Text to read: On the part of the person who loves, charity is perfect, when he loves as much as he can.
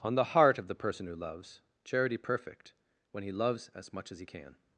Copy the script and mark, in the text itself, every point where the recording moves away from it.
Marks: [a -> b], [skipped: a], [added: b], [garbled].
On the [part -> heart] of the person who loves, charity [skipped: is] perfect, when he loves as much as he can.